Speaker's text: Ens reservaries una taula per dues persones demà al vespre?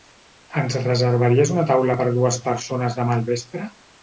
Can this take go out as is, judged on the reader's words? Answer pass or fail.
pass